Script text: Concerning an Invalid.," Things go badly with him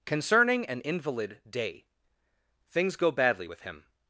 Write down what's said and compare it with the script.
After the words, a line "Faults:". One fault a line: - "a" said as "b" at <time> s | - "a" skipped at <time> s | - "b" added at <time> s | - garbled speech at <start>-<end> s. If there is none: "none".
Concerning an Invalid.," day Things go badly with him
Faults:
- "day" added at 1.5 s